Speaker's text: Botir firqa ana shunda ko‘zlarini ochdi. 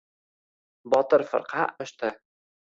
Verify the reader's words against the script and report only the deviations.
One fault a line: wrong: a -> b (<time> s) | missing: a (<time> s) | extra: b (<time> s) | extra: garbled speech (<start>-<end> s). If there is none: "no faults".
missing: ana shunda ko‘zlarini (1.7 s)